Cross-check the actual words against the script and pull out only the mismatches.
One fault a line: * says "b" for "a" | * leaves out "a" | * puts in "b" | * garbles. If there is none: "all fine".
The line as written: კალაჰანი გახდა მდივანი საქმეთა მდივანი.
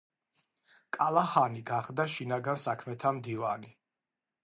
* says "შინაგან" for "მდივანი"